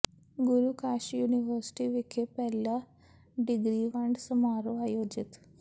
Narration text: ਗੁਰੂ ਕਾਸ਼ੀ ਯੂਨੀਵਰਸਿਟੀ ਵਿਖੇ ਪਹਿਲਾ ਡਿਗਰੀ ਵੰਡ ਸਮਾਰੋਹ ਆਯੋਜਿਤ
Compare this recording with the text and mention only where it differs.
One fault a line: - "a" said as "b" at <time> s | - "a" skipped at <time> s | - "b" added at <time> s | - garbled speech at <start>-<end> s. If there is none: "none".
none